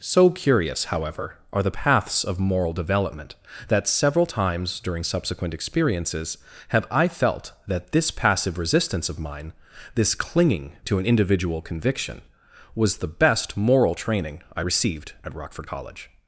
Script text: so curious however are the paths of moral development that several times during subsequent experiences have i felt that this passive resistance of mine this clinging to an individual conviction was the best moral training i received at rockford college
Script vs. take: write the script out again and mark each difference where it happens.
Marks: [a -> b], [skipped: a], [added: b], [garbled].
so curious however are the paths of moral development that several times during subsequent experiences have i felt that this passive resistance of mine this clinging to an individual conviction was the best moral training i received at rockford college